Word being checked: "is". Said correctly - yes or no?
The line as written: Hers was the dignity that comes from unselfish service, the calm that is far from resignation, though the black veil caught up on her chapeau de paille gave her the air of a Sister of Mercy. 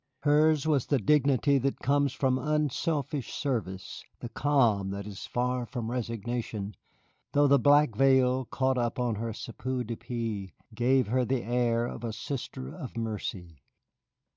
yes